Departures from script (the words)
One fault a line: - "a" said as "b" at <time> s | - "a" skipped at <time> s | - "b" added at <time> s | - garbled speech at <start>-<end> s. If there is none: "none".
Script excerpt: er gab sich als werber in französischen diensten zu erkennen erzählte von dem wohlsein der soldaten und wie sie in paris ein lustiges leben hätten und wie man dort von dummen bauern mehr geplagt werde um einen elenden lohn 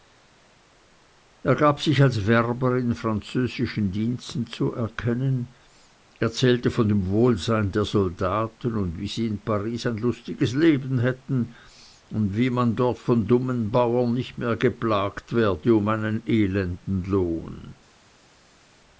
- "nicht" added at 14.2 s